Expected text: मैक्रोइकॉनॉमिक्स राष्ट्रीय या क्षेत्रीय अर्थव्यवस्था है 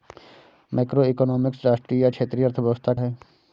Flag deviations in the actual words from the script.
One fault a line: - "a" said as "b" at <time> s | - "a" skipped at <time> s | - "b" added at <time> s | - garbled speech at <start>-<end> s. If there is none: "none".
none